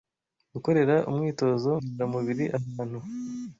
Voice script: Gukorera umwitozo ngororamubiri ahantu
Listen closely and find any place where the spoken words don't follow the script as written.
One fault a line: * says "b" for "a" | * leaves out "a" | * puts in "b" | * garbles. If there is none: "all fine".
all fine